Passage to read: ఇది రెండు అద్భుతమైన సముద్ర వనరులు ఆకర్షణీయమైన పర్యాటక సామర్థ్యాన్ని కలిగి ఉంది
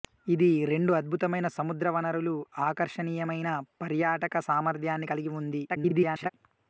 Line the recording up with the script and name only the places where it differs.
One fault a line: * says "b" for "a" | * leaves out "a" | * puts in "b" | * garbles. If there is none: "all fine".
* garbles